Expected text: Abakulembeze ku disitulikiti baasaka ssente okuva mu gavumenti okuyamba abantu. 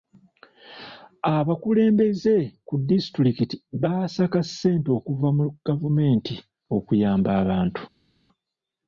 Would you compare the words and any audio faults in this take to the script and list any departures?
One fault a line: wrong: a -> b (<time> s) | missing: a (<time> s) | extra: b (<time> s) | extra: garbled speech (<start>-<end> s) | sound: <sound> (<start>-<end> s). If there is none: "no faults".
no faults